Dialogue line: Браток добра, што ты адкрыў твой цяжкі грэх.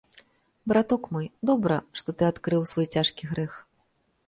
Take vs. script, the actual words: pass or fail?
fail